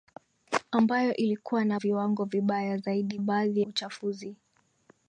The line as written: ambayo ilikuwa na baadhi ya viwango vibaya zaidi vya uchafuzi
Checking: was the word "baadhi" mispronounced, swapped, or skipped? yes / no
yes